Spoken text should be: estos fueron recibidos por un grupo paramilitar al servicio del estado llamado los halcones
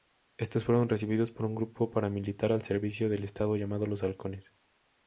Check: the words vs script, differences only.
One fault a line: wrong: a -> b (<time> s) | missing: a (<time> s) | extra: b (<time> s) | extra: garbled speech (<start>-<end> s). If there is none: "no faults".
no faults